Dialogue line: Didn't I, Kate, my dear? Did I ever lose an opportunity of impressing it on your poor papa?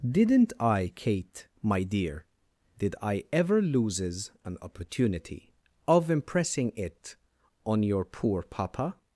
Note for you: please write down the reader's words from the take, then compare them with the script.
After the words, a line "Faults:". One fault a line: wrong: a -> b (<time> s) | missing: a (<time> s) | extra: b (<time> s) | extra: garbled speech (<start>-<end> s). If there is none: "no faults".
Didn't I, Kate, my dear? Did I ever loses an opportunity of impressing it on your poor papa?
Faults:
wrong: lose -> loses (3.6 s)